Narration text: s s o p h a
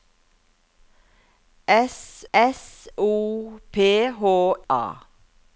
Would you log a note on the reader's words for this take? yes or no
no